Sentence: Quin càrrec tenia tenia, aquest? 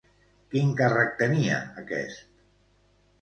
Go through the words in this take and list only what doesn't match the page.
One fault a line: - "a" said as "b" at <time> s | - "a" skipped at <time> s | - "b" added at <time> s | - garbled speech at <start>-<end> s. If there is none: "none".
- "tenia" skipped at 1.6 s